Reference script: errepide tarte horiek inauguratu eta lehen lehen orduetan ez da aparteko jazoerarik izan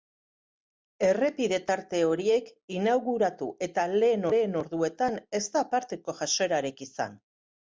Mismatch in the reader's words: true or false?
false